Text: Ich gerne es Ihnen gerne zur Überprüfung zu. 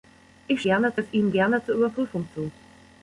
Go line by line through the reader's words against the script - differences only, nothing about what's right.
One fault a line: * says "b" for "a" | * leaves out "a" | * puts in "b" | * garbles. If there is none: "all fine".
all fine